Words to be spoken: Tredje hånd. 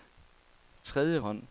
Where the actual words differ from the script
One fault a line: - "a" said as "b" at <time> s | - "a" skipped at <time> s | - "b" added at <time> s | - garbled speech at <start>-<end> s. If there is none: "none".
none